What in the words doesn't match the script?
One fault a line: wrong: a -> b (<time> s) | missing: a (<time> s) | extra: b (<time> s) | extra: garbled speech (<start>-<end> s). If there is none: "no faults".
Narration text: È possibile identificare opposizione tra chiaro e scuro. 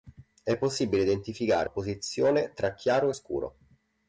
no faults